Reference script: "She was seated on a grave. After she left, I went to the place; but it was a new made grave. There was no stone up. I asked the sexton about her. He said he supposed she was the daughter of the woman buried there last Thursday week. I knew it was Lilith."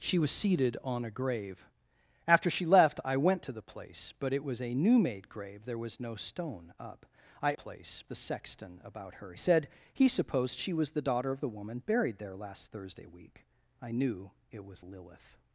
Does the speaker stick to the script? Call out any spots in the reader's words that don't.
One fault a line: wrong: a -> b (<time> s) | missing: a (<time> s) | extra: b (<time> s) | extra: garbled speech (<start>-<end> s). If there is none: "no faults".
wrong: asked -> place (7.5 s)
missing: He (9.3 s)